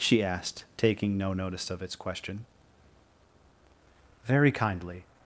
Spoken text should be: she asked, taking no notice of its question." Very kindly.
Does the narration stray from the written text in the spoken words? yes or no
no